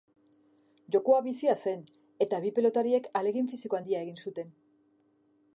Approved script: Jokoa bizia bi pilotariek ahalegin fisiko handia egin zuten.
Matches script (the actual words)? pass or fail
fail